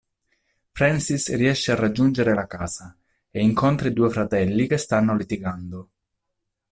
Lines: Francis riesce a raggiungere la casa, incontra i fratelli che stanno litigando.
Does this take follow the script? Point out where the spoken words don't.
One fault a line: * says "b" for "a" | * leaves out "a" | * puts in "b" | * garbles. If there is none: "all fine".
* puts in "e"
* puts in "due"